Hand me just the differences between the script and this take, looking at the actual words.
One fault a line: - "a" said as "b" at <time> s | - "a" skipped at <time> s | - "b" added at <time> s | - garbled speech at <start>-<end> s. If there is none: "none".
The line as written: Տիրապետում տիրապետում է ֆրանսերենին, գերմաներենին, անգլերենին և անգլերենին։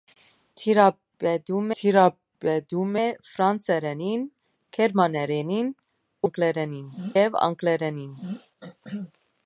none